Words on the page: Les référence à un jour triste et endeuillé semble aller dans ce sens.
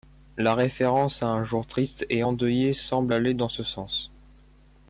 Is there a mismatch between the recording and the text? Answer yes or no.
yes